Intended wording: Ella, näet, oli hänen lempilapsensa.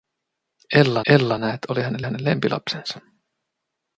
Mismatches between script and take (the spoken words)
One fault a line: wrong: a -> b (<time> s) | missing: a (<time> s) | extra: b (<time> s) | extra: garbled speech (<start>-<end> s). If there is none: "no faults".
extra: ella (1.1 s)
extra: hänen (2.0 s)